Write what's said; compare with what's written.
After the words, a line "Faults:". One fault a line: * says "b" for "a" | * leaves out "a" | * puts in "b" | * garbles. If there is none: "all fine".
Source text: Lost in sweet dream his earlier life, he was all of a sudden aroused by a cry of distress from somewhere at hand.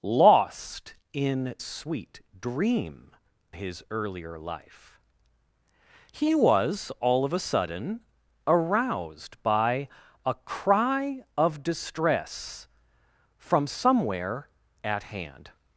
Lost in sweet dream his earlier life, he was all of a sudden aroused by a cry of distress from somewhere at hand.
Faults:
all fine